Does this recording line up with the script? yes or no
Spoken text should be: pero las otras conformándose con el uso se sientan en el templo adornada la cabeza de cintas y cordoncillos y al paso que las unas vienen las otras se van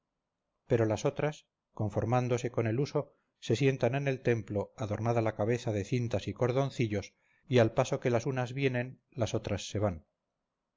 yes